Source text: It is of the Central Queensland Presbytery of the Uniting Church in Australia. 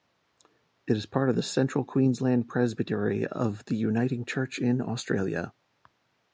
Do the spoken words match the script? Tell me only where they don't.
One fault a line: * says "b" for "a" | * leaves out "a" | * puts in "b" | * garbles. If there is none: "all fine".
* puts in "part"